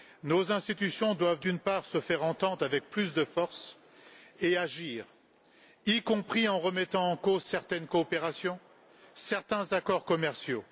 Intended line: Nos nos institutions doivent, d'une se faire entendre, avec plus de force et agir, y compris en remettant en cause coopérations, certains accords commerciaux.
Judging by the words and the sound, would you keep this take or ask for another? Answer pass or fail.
fail